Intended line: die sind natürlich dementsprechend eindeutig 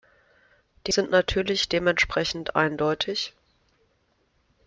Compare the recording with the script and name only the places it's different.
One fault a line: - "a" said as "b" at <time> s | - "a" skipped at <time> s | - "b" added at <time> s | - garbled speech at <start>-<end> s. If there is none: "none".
none